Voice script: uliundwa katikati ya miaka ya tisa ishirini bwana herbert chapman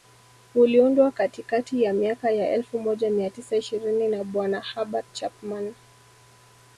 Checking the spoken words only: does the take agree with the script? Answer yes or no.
no